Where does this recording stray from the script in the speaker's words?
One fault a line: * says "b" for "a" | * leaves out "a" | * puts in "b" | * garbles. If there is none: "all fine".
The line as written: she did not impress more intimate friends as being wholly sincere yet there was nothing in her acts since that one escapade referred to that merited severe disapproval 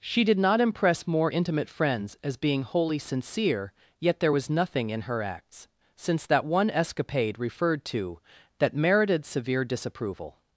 all fine